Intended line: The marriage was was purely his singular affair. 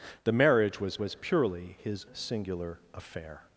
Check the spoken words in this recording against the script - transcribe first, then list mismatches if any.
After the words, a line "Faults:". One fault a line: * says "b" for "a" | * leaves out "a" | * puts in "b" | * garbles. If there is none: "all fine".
The marriage was was purely his singular affair.
Faults:
all fine